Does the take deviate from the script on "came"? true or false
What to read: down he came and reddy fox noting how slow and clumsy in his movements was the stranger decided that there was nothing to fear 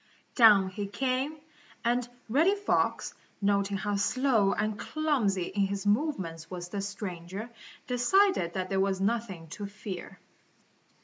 false